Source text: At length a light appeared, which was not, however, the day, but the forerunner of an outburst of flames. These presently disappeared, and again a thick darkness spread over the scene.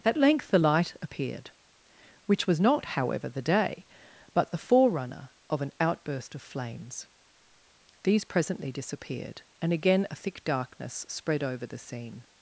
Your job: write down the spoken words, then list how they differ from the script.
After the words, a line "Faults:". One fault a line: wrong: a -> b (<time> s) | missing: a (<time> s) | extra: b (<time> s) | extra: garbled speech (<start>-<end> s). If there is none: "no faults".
At length the light appeared, which was not, however, the day, but the forerunner of an outburst of flames. These presently disappeared, and again a thick darkness spread over the scene.
Faults:
wrong: a -> the (0.5 s)